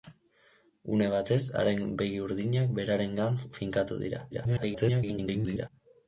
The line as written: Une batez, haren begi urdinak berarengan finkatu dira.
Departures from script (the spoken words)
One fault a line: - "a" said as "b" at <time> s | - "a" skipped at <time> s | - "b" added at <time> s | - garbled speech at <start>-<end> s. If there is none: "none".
- garbled speech at 4.3-5.7 s